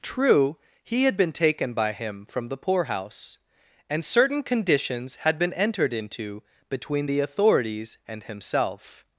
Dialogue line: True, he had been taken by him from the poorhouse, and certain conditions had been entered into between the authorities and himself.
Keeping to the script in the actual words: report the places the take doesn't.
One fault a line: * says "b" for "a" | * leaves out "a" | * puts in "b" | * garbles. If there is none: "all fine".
all fine